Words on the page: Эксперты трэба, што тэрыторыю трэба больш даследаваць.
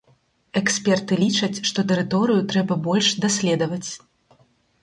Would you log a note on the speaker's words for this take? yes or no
yes